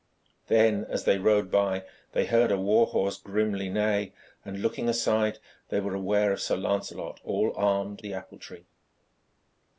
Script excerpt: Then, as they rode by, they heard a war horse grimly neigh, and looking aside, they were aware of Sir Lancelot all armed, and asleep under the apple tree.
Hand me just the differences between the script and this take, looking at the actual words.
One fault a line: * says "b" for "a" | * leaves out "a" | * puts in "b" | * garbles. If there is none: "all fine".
* leaves out "and asleep under"